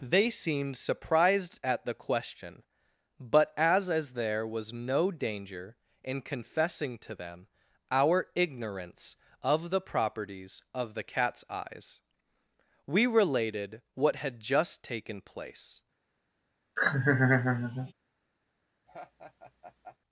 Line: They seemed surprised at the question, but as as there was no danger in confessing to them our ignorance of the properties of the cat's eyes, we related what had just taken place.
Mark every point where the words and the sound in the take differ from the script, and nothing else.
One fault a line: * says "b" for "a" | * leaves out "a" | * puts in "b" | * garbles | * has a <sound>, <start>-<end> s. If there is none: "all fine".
* has a laugh, 16.8-17.9 s
* has a laugh, 18.9-20.0 s